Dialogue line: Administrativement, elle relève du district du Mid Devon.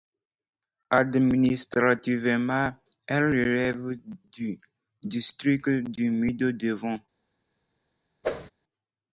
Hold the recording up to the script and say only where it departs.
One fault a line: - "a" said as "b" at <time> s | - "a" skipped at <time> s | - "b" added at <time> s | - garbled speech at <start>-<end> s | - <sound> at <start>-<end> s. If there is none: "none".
- whoosh at 8.2-8.5 s